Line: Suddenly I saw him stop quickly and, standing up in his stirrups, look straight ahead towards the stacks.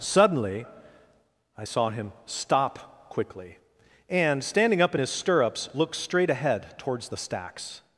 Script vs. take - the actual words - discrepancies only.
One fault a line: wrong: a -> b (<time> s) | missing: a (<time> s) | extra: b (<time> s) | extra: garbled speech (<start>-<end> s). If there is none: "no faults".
no faults